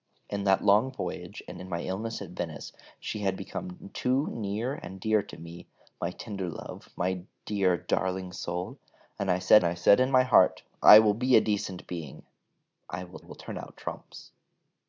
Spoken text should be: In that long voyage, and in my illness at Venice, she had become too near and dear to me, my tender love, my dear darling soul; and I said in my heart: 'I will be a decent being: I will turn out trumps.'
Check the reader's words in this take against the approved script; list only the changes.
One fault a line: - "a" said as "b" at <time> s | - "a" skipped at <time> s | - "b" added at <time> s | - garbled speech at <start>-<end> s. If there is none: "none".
- "I said" added at 9.6 s
- "will" added at 13.2 s